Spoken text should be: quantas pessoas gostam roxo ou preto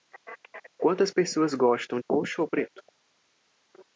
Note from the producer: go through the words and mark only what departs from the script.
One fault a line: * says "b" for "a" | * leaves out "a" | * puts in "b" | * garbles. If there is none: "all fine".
all fine